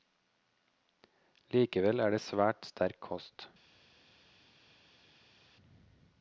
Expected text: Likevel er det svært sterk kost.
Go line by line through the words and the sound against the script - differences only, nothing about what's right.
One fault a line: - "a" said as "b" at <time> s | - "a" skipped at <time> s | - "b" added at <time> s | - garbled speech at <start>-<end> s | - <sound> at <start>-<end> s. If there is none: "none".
none